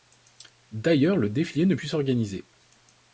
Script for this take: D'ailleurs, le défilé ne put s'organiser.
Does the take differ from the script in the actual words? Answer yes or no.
no